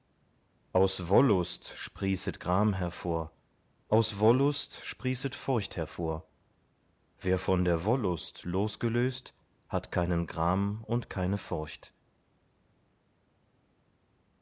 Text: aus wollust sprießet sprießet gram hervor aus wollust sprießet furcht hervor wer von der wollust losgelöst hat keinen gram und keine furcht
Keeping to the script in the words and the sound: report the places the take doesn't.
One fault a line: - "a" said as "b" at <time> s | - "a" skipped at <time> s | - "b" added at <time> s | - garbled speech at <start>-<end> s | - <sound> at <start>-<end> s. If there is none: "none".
- "sprießet" skipped at 2.4 s